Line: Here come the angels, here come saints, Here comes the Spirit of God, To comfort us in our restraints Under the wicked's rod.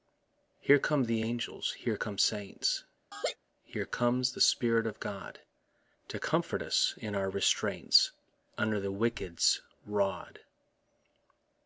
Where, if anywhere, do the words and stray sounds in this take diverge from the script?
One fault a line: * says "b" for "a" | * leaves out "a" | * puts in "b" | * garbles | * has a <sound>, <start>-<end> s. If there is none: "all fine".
* has a laugh, 3.1-3.4 s